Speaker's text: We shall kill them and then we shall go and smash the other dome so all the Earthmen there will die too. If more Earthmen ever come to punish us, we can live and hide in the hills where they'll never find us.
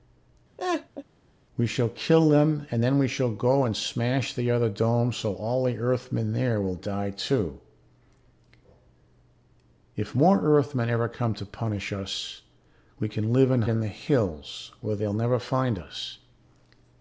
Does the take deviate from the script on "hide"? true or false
true